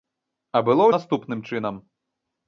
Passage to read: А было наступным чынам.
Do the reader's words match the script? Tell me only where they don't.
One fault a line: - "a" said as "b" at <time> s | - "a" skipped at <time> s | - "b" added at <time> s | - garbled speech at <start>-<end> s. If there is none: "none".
none